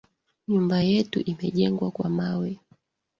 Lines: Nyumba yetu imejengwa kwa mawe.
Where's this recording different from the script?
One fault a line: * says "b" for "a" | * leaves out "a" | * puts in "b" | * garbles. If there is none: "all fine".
all fine